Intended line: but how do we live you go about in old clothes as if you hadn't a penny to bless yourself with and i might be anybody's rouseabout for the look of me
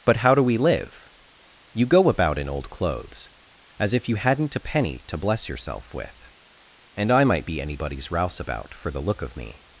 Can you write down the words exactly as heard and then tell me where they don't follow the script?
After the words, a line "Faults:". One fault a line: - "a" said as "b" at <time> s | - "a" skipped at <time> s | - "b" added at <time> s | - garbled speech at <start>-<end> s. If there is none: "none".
but how do we live you go about in old clothes as if you hadn't a penny to bless yourself with and i might be anybody's rouseabout for the look of me
Faults:
none